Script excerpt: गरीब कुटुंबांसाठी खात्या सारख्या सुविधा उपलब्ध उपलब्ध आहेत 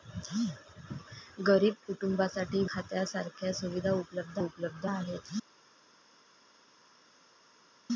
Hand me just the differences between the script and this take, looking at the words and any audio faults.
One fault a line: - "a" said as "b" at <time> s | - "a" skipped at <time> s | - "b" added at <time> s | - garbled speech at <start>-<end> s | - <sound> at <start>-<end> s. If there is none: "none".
none